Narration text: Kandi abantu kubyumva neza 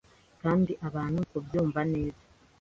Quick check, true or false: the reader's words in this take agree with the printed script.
true